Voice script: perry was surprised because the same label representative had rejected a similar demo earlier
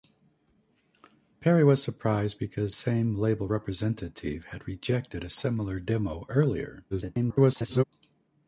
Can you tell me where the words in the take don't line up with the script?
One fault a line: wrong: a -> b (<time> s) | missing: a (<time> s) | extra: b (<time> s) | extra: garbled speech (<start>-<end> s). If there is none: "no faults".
missing: the (2.7 s)
extra: garbled speech (6.9-7.8 s)